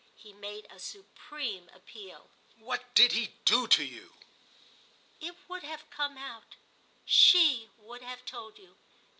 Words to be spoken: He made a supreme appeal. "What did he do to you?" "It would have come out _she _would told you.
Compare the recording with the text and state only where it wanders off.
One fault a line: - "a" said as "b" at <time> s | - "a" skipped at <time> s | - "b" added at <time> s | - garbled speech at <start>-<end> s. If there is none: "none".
- "have" added at 8.0 s